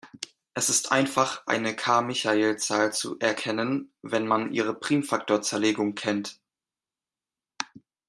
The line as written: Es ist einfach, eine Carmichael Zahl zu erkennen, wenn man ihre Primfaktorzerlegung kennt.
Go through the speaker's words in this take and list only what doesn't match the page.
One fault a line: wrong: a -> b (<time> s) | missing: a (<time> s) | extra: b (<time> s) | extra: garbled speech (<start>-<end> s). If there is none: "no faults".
no faults